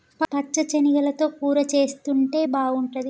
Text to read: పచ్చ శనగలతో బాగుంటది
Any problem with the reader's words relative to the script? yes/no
yes